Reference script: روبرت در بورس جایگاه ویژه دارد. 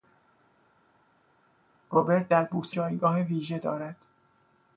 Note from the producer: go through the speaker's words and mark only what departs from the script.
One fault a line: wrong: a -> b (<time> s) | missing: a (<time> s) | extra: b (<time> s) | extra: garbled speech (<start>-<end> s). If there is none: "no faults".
no faults